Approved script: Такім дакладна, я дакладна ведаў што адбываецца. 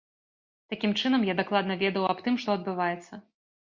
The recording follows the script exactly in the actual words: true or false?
false